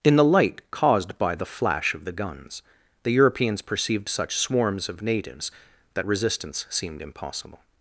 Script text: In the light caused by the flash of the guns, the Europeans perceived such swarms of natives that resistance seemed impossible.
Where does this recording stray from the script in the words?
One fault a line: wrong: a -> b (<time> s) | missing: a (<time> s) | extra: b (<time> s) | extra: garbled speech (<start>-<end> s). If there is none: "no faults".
no faults